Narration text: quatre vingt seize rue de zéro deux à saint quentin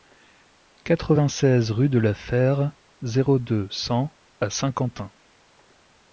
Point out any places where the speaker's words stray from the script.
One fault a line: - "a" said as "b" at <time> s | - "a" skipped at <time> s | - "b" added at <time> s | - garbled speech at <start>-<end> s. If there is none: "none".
- "la fère" added at 2.0 s
- "cent" added at 3.7 s